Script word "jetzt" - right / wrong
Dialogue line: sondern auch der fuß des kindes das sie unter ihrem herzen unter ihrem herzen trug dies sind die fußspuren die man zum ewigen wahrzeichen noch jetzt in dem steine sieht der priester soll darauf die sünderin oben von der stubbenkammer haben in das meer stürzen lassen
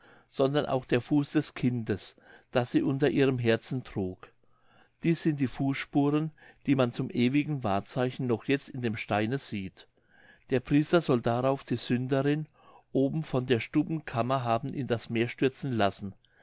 right